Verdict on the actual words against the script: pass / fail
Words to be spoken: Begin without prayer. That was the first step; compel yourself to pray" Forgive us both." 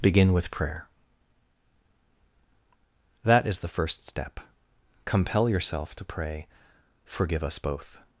fail